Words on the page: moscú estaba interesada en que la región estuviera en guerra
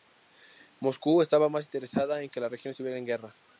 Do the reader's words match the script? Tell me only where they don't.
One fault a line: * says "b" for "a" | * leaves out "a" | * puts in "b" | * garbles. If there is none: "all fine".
* puts in "más"